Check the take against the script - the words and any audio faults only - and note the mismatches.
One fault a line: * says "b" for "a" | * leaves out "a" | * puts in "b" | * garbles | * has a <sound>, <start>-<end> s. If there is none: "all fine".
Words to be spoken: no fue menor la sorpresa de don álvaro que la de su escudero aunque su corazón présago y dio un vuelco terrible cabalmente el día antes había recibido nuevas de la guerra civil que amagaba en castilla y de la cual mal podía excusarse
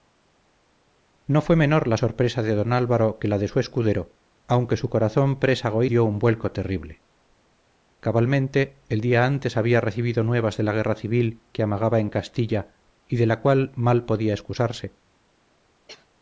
* has a cough, 15.9-16.1 s